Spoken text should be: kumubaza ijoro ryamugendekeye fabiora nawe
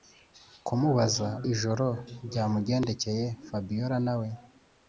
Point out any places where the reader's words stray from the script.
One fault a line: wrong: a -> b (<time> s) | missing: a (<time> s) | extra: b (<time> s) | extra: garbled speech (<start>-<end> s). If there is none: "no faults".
no faults